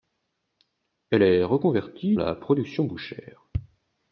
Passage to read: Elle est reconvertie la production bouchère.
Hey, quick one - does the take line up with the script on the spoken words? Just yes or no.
yes